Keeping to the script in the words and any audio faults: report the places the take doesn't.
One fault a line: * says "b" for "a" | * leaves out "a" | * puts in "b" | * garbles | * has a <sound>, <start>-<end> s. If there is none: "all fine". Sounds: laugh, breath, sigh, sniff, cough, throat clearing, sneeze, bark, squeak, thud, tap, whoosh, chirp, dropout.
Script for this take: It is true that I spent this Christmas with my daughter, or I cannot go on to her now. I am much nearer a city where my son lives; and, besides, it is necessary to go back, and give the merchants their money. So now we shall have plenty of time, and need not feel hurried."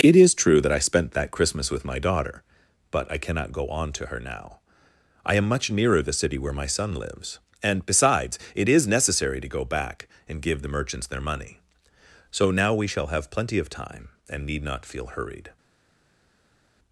* says "that" for "this"
* says "but" for "or"
* says "the" for "a"